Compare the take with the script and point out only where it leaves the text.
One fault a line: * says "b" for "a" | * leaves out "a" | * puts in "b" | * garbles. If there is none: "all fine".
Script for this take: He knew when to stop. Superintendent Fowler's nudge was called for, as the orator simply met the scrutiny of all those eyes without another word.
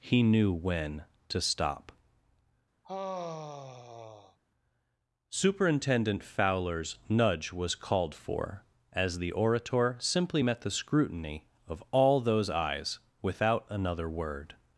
all fine